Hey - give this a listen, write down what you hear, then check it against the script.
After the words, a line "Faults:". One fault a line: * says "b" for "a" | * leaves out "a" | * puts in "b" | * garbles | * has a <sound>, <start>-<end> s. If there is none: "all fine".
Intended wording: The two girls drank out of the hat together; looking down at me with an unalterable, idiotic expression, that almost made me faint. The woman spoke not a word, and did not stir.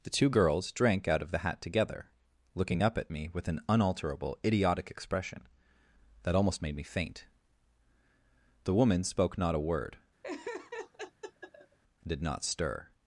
The two girls drank out of the hat together; looking up at me with an unalterable, idiotic expression, that almost made me faint. The woman spoke not a word, and did not stir.
Faults:
* says "up" for "down"
* has a laugh, 10.2-11.8 s